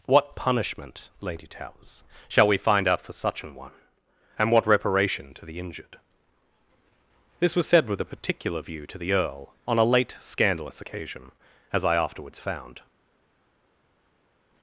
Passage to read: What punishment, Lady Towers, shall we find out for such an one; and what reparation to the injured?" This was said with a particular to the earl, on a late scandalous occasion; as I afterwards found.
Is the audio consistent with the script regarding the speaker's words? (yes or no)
no